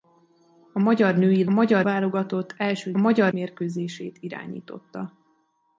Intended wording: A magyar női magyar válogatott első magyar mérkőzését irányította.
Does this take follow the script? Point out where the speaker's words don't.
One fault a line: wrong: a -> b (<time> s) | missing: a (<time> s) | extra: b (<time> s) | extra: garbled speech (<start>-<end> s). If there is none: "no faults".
no faults